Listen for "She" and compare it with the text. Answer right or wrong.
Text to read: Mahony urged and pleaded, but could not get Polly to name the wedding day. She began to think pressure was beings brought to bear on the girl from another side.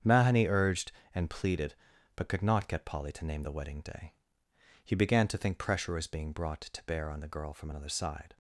wrong